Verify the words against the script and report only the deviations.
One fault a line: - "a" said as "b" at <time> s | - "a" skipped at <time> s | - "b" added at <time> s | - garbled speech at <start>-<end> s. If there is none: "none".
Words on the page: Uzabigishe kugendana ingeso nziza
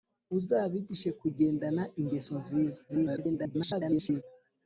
- garbled speech at 2.9-4.2 s